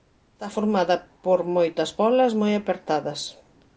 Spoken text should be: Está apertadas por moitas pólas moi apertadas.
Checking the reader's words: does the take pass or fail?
fail